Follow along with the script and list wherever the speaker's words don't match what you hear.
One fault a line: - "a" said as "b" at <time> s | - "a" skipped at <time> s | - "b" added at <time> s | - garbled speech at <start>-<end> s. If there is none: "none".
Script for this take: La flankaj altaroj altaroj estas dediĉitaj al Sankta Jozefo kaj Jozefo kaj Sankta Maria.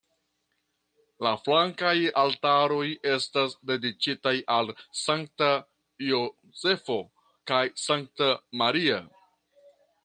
- "altaroj" skipped at 2.9 s
- "Jozefo kaj" skipped at 7.6 s